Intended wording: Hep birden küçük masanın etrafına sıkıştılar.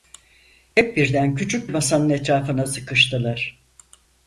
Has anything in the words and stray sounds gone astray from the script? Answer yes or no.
no